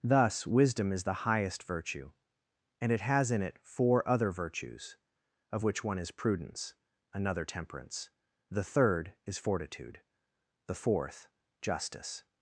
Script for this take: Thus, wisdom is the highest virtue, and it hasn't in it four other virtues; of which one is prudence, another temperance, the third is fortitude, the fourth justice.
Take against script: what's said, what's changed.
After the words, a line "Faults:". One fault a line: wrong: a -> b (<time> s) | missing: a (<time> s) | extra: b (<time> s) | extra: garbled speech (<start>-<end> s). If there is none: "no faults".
Thus, wisdom is the highest virtue, and it has in it four other virtues; of which one is prudence, another temperance, the third is fortitude, the fourth justice.
Faults:
wrong: hasn't -> has (3.0 s)